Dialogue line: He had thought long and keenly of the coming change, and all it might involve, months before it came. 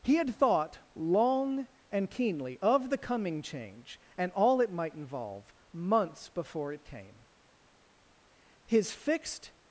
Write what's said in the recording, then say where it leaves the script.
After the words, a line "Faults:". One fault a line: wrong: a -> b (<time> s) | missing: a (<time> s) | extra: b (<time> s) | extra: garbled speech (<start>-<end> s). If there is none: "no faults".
He had thought long and keenly of the coming change, and all it might involve, months before it came. His fixed
Faults:
extra: His fixed (8.7 s)